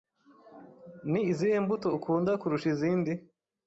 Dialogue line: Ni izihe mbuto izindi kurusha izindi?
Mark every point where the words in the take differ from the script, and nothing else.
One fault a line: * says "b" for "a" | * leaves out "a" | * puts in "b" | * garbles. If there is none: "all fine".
* says "ukunda" for "izindi"